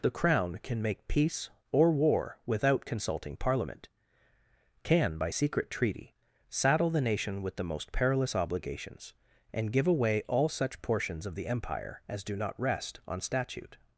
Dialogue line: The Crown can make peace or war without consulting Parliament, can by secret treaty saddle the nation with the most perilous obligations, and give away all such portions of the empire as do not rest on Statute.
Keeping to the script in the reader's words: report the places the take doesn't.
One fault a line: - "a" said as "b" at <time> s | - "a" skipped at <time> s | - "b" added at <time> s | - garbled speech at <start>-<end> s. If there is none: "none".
none